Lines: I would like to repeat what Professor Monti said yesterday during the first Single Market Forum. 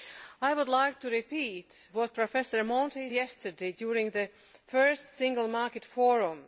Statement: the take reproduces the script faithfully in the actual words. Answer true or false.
false